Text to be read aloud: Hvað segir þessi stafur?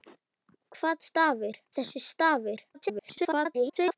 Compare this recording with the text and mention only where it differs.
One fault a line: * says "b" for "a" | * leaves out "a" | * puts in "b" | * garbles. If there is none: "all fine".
* says "stafur" for "segir"
* garbles